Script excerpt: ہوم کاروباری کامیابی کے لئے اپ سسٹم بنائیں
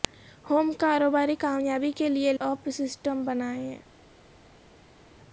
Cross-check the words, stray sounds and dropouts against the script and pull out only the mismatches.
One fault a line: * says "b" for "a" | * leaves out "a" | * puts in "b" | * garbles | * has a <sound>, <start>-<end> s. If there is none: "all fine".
all fine